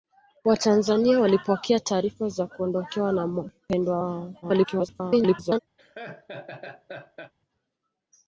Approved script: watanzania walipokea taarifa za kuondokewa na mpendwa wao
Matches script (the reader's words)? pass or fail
fail